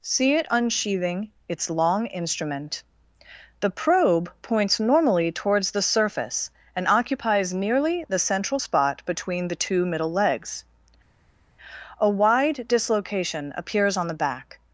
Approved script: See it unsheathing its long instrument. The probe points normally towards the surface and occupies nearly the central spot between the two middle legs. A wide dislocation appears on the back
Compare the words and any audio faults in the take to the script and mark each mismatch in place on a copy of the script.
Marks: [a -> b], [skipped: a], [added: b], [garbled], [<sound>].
See it unsheathing its long instrument. The probe points normally towards the surface and occupies nearly the central spot between the two middle legs. A wide dislocation appears on the back